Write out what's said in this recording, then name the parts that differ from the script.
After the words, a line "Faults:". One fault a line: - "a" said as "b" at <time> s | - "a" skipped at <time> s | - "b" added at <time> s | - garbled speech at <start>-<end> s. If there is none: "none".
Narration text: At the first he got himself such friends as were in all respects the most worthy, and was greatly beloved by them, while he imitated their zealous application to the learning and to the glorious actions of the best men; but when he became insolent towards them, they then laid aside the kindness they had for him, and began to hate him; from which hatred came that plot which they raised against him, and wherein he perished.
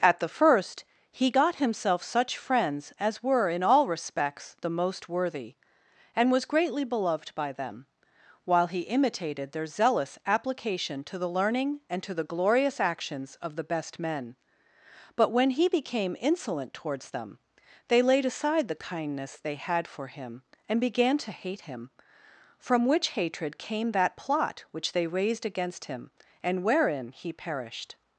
At the first he got himself such friends as were in all respects the most worthy, and was greatly beloved by them, while he imitated their zealous application to the learning and to the glorious actions of the best men; but when he became insolent towards them, they laid aside the kindness they had for him, and began to hate him; from which hatred came that plot which they raised against him, and wherein he perished.
Faults:
- "then" skipped at 18.0 s